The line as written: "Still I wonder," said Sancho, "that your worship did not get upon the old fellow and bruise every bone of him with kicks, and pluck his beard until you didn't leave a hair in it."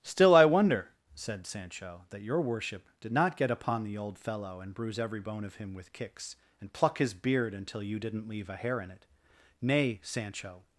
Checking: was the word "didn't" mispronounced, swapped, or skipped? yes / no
no